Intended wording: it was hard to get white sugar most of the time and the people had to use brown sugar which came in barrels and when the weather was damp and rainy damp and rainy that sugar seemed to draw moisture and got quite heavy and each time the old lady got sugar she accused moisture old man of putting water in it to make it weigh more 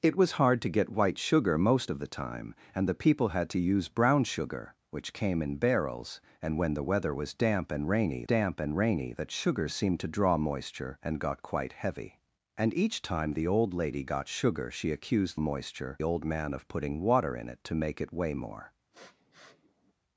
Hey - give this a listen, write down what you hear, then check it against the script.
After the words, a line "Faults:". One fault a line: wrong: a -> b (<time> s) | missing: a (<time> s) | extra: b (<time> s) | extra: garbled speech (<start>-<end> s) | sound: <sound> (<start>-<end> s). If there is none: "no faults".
it was hard to get white sugar most of the time and the people had to use brown sugar which came in barrels and when the weather was damp and rainy damp and rainy that sugar seemed to draw moisture and got quite heavy and each time the old lady got sugar she accused moisture old man of putting water in it to make it weigh more
Faults:
sound: sniff (18.9-19.9 s)